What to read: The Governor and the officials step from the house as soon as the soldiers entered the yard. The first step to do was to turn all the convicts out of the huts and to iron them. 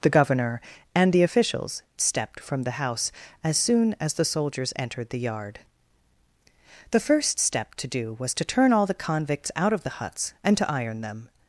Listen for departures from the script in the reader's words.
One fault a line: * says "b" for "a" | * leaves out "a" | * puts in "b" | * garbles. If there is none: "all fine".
all fine